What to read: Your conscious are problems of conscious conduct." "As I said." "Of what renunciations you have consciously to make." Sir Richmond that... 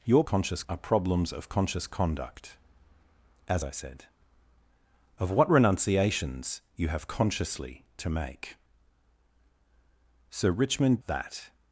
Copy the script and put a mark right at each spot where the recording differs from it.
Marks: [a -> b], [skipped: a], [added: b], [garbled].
Your conscious are problems of conscious conduct." "As I said." "Of what renunciations you have consciously to make." Sir Richmond that...